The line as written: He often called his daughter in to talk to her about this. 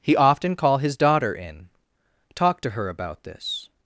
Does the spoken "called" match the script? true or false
false